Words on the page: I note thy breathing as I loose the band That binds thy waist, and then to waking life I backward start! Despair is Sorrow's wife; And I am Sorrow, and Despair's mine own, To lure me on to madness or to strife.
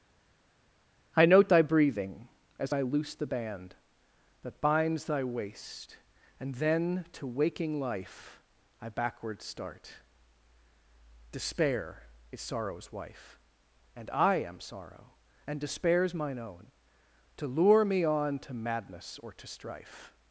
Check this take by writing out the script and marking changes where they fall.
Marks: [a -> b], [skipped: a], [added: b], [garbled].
I note thy breathing as I loose the band That binds thy waist, and then to waking life I backward start! Despair is Sorrow's wife; And I am Sorrow, and Despair's mine own, To lure me on to madness or to strife.